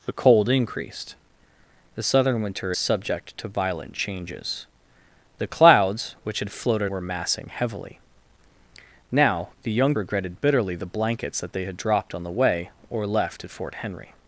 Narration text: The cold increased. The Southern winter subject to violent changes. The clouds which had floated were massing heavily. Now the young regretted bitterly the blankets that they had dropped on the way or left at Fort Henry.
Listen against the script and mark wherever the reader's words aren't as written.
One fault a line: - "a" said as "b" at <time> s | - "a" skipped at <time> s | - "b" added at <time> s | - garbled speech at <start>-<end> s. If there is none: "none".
none